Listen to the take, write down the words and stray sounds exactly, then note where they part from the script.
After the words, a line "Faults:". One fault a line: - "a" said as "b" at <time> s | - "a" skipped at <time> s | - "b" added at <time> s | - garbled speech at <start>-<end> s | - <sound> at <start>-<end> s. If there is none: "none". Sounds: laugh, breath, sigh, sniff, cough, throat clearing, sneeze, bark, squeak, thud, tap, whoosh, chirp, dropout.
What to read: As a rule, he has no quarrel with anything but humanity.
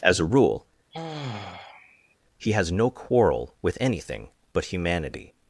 As a rule, he has no quarrel with anything but humanity.
Faults:
- sigh at 0.9-2.1 s